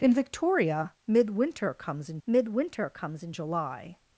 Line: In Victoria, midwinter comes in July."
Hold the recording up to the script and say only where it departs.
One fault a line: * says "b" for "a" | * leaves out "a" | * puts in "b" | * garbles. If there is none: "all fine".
* puts in "midwinter comes in"